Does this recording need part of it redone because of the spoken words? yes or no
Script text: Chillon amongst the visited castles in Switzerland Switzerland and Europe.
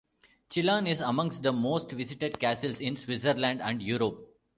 yes